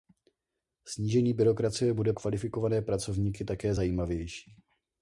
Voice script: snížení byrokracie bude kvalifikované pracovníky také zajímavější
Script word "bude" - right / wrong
right